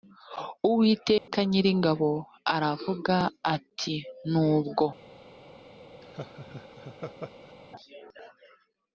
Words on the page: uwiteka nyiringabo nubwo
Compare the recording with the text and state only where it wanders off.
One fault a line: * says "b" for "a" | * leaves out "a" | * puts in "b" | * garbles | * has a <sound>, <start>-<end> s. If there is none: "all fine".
* has a dropout, 1.2-1.3 s
* puts in "aravuga ati"
* has a laugh, 6.0-7.5 s